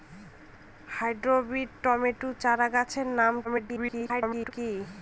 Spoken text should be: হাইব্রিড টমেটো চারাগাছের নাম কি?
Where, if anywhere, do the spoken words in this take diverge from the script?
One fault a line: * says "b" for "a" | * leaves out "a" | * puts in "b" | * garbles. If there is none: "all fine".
* garbles